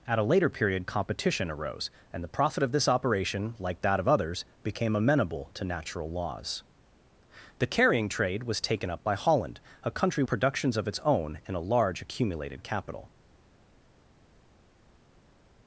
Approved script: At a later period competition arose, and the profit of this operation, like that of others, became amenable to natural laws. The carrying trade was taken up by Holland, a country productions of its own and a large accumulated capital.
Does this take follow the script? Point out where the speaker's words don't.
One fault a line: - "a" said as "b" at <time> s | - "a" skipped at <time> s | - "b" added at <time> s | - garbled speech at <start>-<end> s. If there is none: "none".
none